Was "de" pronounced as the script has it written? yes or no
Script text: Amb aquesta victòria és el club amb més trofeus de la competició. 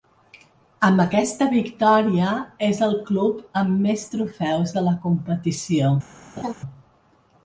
yes